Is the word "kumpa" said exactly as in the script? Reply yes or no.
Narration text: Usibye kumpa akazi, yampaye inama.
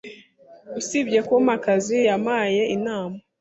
yes